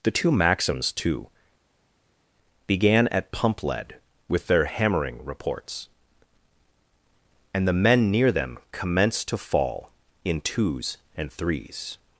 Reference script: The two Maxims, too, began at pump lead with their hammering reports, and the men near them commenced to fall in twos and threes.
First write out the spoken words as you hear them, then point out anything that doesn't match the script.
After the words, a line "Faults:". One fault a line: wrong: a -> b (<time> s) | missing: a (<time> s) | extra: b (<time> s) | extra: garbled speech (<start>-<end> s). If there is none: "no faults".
The two Maxims, too, began at pump lead with their hammering reports, and the men near them commenced to fall in twos and threes.
Faults:
no faults